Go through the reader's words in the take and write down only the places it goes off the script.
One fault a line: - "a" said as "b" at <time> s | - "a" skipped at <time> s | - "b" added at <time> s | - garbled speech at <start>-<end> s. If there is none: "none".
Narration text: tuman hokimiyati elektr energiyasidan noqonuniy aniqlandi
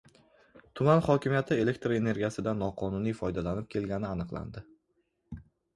- "foydalanib kelgani" added at 3.2 s